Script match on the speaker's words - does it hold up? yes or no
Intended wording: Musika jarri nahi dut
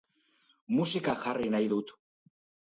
yes